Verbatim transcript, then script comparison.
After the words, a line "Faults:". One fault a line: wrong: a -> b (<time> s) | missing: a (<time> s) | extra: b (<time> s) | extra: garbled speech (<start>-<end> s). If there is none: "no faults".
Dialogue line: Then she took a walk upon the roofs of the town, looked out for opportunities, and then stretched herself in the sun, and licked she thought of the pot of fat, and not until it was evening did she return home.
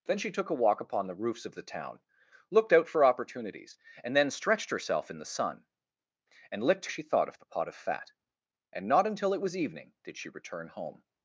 Then she took a walk upon the roofs of the town, looked out for opportunities, and then stretched herself in the sun, and licked she thought of the pot of fat, and not until it was evening did she return home.
Faults:
no faults